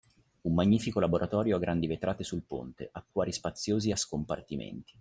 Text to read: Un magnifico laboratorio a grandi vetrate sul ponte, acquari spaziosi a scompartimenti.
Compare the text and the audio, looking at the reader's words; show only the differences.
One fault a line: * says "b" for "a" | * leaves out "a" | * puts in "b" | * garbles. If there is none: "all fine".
all fine